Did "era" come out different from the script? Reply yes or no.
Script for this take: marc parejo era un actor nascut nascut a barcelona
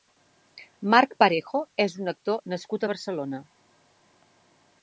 yes